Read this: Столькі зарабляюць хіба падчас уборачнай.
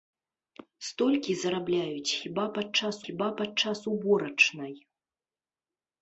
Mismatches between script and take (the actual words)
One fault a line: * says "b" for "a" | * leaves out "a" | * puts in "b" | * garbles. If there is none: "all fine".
* puts in "хіба падчас"